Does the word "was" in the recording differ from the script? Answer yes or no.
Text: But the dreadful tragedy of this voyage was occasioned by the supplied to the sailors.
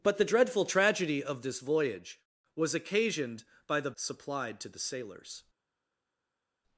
no